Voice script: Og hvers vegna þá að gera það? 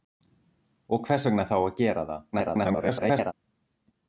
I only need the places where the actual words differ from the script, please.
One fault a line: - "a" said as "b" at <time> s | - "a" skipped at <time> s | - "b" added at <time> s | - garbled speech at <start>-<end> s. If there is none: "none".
- garbled speech at 2.3-3.3 s